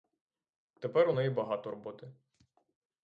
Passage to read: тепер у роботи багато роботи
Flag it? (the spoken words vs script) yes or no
yes